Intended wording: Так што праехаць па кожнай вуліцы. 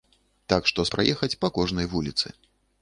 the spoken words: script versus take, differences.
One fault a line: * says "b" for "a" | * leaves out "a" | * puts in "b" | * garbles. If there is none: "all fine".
all fine